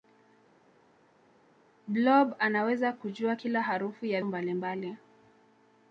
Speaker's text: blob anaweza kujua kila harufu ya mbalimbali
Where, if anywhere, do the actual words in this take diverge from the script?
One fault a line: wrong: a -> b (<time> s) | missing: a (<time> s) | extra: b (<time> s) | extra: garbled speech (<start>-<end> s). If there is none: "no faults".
no faults